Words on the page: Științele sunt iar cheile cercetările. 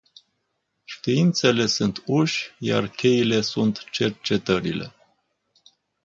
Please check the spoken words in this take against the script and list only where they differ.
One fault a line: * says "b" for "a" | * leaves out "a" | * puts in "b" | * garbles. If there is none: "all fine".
* puts in "uși"
* puts in "sunt"